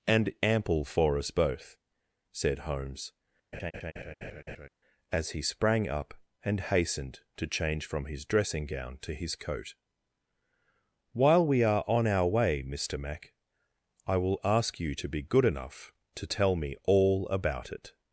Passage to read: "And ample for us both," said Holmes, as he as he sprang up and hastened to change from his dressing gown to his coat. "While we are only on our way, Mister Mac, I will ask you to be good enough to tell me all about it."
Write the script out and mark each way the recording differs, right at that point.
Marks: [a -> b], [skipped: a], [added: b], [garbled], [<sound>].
"And ample for us both," said Holmes, [laugh] as he [skipped: as he] sprang up and hastened to change from his dressing gown to his coat. "While we are [skipped: only] on our way, Mister Mac, I will ask you to be good enough to tell me all about it."